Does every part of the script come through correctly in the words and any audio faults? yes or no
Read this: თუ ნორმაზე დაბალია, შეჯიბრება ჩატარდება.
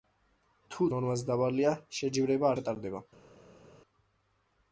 yes